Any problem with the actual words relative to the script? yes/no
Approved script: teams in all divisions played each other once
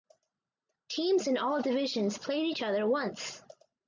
no